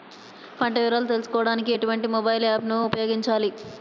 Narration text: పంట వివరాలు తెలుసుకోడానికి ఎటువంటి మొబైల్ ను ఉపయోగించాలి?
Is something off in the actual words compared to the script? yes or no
yes